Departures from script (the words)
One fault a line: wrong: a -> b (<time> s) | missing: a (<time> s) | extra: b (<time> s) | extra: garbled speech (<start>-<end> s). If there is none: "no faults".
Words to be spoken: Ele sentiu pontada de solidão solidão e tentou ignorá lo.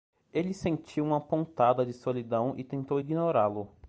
extra: uma (1.1 s)
missing: solidão (2.5 s)